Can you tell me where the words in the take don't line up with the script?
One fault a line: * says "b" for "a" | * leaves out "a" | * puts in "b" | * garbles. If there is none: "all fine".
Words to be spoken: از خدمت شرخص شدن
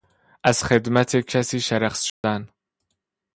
* puts in "کسی"